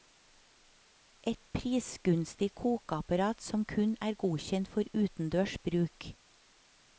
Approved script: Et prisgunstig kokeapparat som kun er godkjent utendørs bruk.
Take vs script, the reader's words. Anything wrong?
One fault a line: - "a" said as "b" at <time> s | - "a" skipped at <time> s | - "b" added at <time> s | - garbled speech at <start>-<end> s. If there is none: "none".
- "for" added at 4.8 s